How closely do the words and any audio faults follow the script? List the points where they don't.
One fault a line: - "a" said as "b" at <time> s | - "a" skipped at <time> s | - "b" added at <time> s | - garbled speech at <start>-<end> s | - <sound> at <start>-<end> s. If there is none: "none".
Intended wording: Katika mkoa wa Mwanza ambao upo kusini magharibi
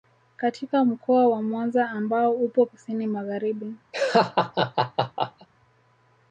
- laugh at 3.9-5.5 s